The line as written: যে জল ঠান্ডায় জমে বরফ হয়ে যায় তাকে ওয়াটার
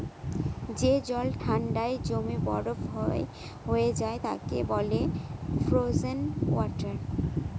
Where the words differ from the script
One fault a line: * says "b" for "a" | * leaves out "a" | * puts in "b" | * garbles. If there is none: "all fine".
* puts in "বলে ফ্রোজেন"